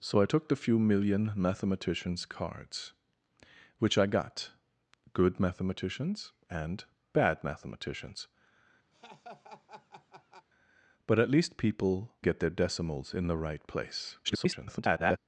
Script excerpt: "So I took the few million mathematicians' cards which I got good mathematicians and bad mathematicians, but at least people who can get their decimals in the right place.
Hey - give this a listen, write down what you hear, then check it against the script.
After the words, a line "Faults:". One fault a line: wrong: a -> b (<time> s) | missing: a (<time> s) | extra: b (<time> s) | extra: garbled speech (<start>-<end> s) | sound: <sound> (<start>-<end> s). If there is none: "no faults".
"So I took the few million mathematicians' cards which I got good mathematicians and bad mathematicians, but at least people get their decimals in the right place. [garbled]
Faults:
sound: laugh (8.9-10.5 s)
missing: who can (12.1 s)
extra: garbled speech (14.2-15.2 s)